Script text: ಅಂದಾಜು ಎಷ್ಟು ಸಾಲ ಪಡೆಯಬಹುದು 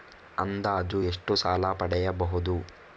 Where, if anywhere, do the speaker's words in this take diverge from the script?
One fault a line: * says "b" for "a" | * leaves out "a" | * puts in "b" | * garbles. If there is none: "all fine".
all fine